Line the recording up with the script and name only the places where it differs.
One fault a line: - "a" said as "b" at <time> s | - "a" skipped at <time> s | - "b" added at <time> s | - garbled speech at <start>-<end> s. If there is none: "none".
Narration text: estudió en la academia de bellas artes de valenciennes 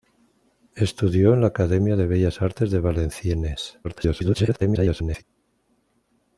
- garbled speech at 3.8-5.2 s